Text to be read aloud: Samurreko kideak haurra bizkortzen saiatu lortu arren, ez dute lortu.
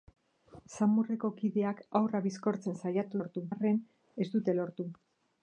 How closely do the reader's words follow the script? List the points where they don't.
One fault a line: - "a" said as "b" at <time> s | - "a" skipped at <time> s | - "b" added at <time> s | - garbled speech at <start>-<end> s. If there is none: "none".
none